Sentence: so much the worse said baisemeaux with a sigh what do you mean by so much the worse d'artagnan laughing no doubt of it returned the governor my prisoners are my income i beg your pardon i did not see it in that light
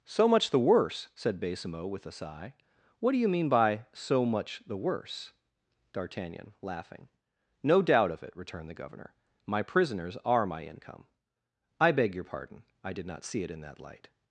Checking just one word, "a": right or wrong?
right